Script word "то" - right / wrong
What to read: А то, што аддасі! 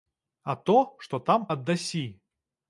right